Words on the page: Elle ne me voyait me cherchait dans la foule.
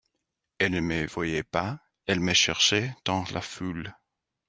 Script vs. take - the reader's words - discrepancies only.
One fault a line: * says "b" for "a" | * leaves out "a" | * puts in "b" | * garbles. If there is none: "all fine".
* puts in "pas elle"